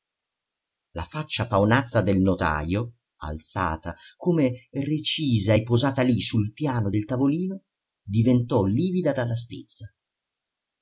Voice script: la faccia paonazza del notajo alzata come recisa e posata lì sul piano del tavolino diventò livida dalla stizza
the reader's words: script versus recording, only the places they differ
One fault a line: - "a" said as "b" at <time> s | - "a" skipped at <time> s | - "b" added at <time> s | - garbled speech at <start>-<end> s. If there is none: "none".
none